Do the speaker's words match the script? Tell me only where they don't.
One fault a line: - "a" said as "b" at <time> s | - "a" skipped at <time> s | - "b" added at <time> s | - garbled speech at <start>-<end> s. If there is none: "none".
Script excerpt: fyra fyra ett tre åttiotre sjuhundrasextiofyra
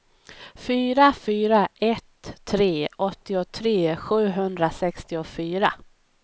none